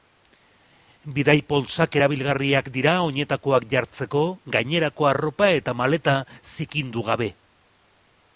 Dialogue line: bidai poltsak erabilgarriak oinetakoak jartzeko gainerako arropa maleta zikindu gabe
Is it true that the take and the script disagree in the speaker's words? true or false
true